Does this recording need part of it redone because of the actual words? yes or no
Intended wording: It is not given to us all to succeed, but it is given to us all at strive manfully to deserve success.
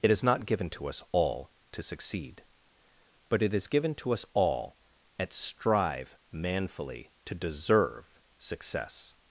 no